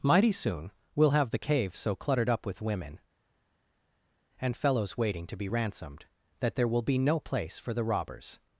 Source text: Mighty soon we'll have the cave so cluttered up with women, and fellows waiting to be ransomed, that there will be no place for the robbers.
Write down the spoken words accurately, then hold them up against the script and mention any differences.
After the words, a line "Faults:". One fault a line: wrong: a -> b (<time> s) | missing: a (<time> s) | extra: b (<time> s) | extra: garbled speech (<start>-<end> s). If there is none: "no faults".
Mighty soon we'll have the cave so cluttered up with women, and fellows waiting to be ransomed, that there will be no place for the robbers.
Faults:
no faults